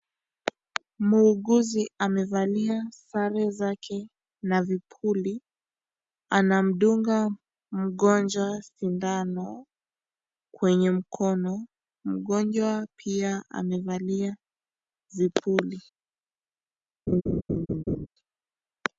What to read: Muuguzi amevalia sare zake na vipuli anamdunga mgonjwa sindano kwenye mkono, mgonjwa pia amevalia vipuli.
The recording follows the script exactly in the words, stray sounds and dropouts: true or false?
false